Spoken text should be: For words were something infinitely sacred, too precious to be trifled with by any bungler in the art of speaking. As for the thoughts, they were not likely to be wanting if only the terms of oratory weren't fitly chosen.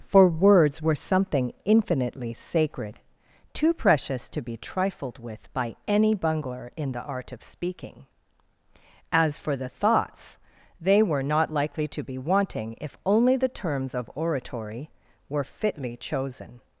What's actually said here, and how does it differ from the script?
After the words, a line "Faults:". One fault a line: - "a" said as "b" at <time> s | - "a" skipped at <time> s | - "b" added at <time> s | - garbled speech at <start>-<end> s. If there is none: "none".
For words were something infinitely sacred, too precious to be trifled with by any bungler in the art of speaking. As for the thoughts, they were not likely to be wanting if only the terms of oratory were fitly chosen.
Faults:
- "weren't" said as "were" at 15.3 s